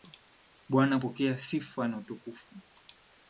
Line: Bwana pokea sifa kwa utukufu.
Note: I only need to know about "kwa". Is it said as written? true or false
false